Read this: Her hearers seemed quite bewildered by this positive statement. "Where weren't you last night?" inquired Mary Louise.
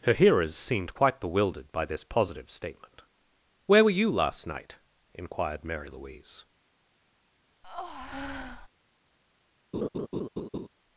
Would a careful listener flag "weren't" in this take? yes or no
yes